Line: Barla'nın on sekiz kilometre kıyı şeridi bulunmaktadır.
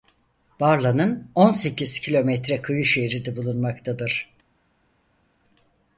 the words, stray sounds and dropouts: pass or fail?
pass